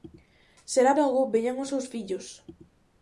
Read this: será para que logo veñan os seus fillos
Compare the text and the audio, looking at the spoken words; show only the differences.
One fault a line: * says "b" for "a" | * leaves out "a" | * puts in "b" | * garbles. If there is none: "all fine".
* leaves out "para que"